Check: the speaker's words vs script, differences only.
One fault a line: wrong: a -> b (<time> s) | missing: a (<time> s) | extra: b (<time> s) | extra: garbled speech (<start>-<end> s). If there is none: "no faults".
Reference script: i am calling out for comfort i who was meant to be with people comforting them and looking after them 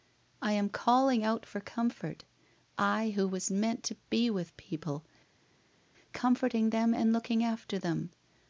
no faults